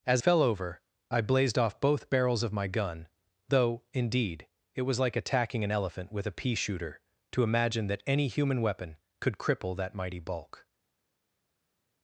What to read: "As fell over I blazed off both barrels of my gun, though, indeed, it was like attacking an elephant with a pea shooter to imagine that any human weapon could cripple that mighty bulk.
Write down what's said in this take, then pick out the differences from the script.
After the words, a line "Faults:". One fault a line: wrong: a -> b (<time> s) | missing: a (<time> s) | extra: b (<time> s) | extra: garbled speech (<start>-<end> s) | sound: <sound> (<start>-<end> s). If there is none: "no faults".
"As fell over I blazed off both barrels of my gun, though, indeed, it was like attacking an elephant with a pea shooter to imagine that any human weapon could cripple that mighty bulk.
Faults:
no faults